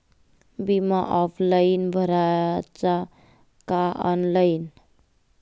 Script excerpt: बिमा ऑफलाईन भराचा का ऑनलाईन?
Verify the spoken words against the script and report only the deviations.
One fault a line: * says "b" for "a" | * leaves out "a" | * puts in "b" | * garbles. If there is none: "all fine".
all fine